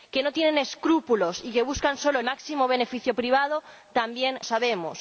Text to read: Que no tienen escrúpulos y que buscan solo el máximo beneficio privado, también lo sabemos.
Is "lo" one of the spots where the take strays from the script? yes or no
yes